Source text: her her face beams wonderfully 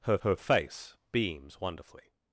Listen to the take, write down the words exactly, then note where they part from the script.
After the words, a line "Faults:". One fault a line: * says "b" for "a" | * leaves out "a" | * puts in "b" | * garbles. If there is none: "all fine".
her her face beams wonderfully
Faults:
all fine